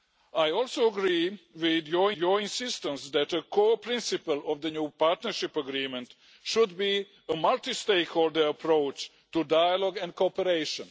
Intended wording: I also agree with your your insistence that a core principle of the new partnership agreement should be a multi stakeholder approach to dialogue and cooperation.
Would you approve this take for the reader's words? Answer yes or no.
yes